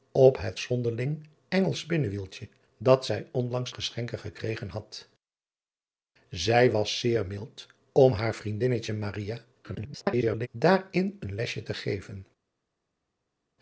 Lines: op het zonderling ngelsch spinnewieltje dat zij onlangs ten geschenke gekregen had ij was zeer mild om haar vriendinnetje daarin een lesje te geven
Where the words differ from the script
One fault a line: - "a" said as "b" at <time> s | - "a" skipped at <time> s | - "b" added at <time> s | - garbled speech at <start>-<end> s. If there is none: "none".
- "ten" skipped at 3.7 s
- garbled speech at 9.6-10.5 s